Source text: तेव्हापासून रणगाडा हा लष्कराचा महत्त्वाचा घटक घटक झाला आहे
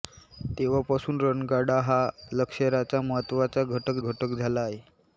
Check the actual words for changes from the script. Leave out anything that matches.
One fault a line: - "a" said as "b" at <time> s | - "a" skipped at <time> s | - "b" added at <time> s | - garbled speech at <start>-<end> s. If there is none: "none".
none